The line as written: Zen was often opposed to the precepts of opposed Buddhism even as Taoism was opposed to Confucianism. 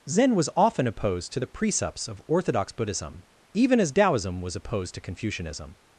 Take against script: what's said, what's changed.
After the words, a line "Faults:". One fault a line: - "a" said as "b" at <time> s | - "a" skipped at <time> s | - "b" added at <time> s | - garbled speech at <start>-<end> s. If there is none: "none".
Zen was often opposed to the precepts of orthodox Buddhism even as Taoism was opposed to Confucianism.
Faults:
- "opposed" said as "orthodox" at 2.3 s